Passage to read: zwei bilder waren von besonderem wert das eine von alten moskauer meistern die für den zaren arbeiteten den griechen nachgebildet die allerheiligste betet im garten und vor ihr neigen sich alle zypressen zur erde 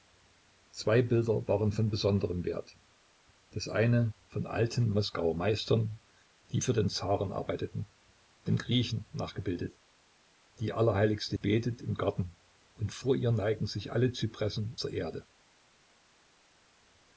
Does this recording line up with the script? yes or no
yes